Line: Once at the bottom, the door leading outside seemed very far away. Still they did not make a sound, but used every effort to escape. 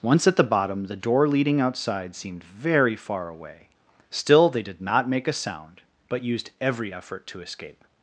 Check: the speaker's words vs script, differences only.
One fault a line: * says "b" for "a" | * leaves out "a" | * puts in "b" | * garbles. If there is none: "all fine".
all fine